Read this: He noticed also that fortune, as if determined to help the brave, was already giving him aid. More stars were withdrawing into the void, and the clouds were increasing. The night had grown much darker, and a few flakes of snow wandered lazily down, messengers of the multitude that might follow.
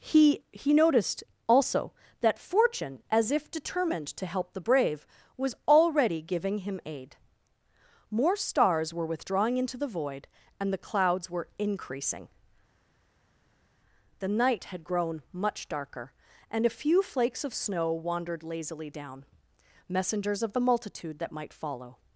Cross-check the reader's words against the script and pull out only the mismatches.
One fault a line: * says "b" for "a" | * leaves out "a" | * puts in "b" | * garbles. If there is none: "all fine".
* puts in "he"